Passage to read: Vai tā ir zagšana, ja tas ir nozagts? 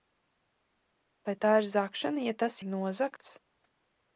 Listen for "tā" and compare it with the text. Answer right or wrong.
right